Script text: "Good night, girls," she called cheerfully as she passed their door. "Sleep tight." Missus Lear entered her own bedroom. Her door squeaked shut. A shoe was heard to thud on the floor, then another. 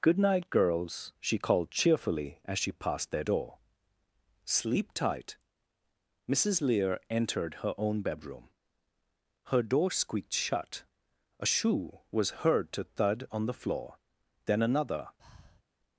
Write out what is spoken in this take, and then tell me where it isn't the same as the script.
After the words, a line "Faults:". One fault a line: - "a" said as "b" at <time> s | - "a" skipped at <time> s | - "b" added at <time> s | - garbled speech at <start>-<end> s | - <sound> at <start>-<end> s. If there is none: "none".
"Good night, girls," she called cheerfully as she passed their door. "Sleep tight." Missus Lear entered her own bedroom. Her door squeaked shut. A shoe was heard to thud on the floor, then another.
Faults:
- breath at 15.2-15.6 s